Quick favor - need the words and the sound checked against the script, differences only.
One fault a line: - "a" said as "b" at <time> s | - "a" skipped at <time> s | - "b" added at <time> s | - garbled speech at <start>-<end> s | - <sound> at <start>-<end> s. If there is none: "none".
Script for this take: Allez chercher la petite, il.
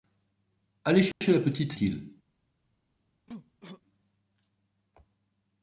- dropout at 1.1-1.2 s
- cough at 3.3-3.8 s